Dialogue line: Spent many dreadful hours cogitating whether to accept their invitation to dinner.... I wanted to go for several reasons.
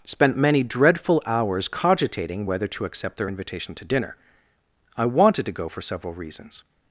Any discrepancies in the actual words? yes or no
no